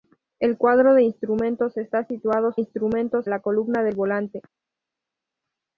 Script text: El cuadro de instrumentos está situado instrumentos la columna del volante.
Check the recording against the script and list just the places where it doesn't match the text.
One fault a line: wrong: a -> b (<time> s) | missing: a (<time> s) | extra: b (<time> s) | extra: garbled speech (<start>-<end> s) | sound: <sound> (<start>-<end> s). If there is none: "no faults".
no faults